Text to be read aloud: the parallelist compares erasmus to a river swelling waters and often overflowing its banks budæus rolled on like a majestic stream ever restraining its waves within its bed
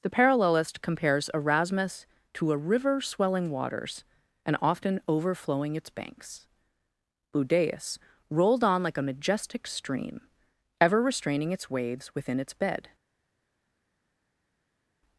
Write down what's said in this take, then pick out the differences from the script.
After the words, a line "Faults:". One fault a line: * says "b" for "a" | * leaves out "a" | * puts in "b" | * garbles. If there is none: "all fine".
the parallelist compares erasmus to a river swelling waters and often overflowing its banks budæus rolled on like a majestic stream ever restraining its waves within its bed
Faults:
all fine